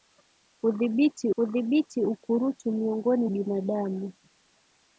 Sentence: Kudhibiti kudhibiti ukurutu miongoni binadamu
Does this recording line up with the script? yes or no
yes